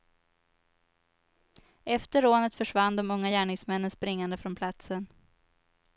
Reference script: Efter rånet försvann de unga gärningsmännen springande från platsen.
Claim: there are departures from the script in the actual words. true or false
false